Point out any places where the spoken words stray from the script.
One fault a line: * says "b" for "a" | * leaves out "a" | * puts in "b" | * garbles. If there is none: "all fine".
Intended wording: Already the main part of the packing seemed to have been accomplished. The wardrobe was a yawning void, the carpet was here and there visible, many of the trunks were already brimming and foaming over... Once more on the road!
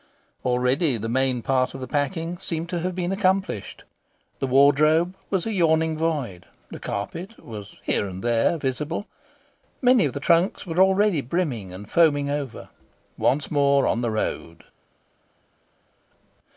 all fine